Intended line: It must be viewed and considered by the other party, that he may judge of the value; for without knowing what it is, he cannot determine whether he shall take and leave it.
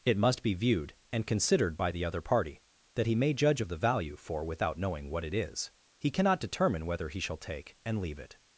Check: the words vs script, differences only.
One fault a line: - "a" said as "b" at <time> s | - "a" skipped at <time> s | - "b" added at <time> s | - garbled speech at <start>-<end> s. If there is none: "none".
none